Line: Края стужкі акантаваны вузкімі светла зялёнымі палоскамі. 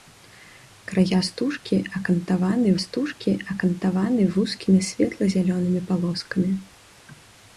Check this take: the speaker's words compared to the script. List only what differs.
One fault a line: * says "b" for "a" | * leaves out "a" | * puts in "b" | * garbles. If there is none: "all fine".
* puts in "стужкі акантаваны"